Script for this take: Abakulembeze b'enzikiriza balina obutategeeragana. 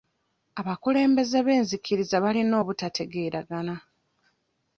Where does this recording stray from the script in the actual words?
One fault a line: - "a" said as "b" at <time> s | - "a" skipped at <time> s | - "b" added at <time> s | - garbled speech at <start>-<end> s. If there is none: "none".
none